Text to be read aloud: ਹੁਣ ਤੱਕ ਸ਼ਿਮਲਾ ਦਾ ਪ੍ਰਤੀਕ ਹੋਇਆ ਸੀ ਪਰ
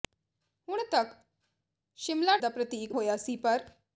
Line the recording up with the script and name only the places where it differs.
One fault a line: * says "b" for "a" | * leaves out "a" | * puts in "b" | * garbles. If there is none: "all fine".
all fine